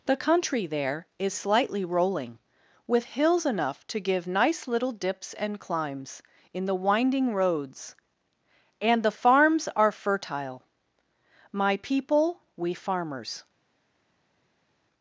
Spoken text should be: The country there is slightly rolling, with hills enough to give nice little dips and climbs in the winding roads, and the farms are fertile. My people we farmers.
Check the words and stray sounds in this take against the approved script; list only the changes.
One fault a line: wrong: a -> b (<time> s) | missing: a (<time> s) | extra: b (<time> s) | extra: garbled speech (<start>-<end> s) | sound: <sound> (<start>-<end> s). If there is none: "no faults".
no faults